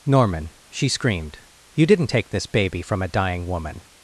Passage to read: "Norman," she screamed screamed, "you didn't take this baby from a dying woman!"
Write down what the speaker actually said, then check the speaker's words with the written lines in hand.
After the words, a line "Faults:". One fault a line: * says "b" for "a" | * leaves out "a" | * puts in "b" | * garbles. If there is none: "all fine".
"Norman," she screamed, "you didn't take this baby from a dying woman!"
Faults:
* leaves out "screamed"